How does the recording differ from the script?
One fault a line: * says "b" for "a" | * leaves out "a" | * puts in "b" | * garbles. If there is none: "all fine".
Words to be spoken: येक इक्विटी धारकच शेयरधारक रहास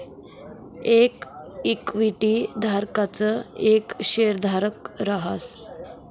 * puts in "येक"